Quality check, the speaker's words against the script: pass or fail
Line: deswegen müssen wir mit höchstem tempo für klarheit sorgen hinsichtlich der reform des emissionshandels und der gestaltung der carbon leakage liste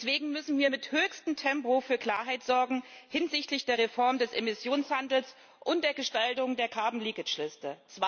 pass